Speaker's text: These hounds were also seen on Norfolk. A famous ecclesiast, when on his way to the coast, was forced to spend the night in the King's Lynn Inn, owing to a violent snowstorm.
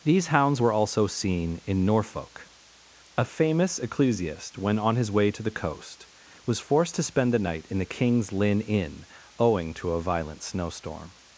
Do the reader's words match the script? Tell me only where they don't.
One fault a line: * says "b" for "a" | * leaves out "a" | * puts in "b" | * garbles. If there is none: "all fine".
* says "in" for "on"